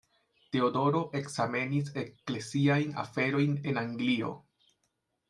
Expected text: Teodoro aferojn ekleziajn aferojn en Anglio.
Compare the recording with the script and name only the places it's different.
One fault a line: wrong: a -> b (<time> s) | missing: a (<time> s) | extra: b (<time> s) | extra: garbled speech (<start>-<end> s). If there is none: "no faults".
wrong: aferojn -> ekzamenis (1.2 s)